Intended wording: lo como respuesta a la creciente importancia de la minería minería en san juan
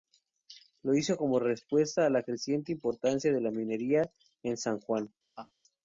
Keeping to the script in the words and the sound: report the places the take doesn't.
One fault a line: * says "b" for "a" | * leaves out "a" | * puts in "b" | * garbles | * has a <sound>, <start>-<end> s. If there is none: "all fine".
* puts in "hizo"
* leaves out "minería"
* has a laugh, 5.4-5.5 s